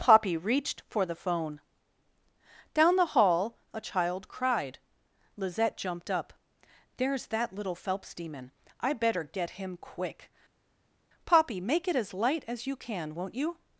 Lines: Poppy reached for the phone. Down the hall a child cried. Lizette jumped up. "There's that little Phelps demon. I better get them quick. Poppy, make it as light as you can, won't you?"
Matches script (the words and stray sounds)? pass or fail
fail